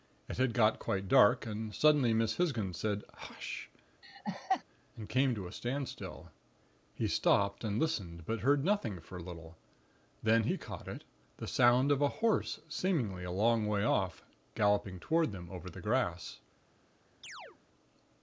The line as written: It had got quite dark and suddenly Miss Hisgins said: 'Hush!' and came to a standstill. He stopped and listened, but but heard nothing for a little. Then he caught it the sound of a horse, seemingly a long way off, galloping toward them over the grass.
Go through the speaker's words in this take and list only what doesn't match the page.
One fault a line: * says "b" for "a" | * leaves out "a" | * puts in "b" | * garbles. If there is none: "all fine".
* leaves out "but"